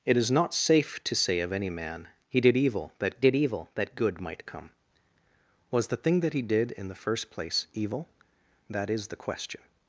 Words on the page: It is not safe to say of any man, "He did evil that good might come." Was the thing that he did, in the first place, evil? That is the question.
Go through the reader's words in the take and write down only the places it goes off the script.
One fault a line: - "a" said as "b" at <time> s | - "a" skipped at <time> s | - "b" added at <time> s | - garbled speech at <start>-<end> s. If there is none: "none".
- "did evil that" added at 3.2 s